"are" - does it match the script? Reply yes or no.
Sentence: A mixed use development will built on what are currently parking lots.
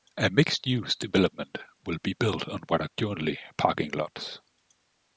yes